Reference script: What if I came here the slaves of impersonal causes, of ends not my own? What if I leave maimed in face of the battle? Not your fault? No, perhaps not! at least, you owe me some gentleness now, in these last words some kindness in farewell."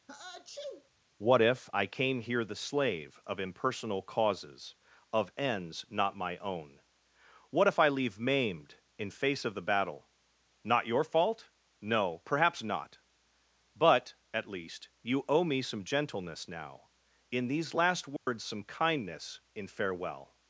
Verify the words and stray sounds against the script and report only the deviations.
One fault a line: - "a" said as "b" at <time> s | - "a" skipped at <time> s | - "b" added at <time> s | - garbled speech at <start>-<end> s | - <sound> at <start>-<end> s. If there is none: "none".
- sneeze at 0.1-0.9 s
- "slaves" said as "slave" at 2.6 s
- "but" added at 13.8 s
- dropout at 18.2-18.3 s